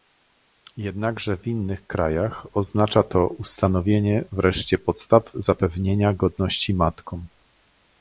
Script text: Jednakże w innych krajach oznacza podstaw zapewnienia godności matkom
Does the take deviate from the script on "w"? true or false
false